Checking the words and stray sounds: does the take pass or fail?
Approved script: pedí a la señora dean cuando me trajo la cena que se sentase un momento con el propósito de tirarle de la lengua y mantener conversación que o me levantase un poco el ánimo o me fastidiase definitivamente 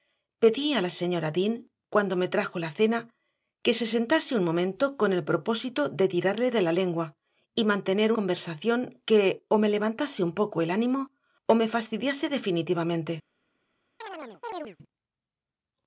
fail